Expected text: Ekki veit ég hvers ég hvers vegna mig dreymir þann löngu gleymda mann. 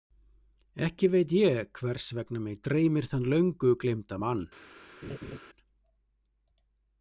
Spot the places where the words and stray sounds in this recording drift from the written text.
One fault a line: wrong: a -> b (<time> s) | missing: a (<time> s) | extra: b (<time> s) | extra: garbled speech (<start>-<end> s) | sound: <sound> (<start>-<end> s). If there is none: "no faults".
missing: ég hvers (2.1 s)
sound: laugh (5.0-5.4 s)